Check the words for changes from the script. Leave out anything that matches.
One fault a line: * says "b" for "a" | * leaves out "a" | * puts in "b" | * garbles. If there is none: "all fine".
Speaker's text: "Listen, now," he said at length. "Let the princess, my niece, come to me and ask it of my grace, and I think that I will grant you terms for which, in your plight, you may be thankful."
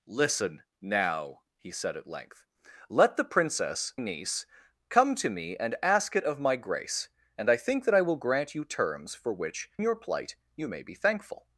* leaves out "my"
* leaves out "in"